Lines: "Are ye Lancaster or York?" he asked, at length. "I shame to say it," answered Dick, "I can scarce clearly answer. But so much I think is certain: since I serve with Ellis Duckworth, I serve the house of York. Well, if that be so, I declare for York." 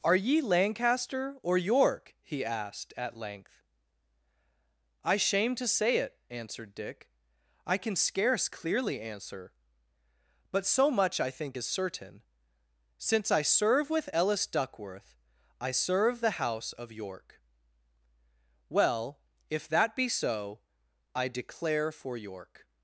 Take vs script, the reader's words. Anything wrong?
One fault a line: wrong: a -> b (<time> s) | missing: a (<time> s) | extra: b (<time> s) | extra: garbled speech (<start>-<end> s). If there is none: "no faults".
no faults